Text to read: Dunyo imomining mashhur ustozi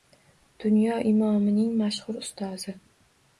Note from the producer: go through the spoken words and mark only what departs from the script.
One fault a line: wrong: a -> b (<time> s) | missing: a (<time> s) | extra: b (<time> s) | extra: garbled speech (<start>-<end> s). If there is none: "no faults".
no faults